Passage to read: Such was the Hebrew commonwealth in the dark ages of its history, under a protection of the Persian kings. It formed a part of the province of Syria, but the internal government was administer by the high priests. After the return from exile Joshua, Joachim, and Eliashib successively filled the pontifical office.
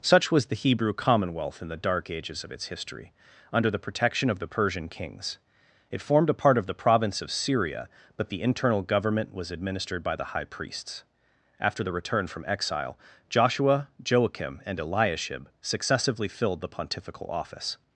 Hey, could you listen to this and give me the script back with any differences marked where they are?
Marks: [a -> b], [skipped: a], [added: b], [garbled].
Such was the Hebrew commonwealth in the dark ages of its history, under [a -> the] protection of the Persian kings. It formed a part of the province of Syria, but the internal government was [administer -> administered] by the high priests. After the return from exile Joshua, Joachim, and Eliashib successively filled the pontifical office.